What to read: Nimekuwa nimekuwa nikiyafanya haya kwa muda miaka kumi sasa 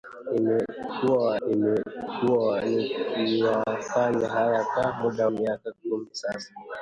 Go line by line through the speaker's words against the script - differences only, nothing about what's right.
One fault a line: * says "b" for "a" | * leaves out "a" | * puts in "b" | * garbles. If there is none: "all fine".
all fine